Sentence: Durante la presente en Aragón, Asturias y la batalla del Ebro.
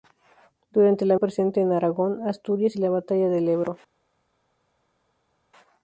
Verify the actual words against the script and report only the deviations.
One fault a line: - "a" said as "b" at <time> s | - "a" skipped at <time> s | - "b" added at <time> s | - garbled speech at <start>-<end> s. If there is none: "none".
none